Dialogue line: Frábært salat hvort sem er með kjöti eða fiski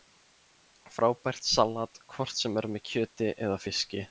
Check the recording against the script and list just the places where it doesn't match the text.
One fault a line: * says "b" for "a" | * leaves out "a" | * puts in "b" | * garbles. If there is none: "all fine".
all fine